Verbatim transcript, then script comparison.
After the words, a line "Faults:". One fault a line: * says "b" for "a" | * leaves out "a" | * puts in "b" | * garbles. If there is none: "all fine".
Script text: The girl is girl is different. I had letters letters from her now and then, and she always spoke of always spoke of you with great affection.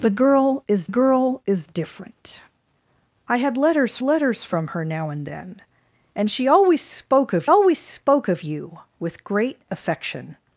The girl is girl is different. I had letters letters from her now and then, and she always spoke of always spoke of you with great affection.
Faults:
all fine